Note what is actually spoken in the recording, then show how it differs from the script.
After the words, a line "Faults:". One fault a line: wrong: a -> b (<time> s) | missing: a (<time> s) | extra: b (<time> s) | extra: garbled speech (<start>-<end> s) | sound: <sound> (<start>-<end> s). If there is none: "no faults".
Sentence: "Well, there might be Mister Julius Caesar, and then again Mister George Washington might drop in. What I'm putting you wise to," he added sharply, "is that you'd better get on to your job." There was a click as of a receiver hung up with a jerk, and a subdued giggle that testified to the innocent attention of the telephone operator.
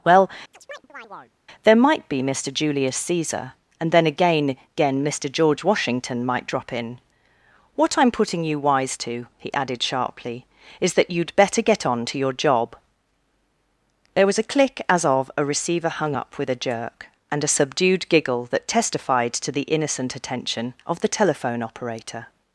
"Well, there might be Mister Julius Caesar, and then again again Mister George Washington might drop in. What I'm putting you wise to," he added sharply, "is that you'd better get on to your job." There was a click as of a receiver hung up with a jerk, and a subdued giggle that testified to the innocent attention of the telephone operator.
Faults:
sound: chirp (0.5-1.3 s)
extra: again (4.7 s)